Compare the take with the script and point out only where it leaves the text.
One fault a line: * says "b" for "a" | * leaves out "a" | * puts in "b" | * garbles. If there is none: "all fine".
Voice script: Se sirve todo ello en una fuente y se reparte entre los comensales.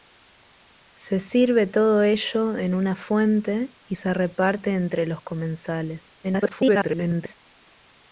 * garbles